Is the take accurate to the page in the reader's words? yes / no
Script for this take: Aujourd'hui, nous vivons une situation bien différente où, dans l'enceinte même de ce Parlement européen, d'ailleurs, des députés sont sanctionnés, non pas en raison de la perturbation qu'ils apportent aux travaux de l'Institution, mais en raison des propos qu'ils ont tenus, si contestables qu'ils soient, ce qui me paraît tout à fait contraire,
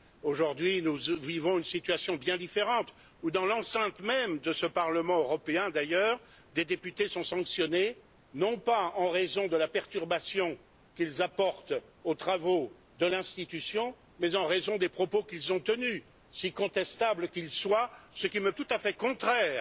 no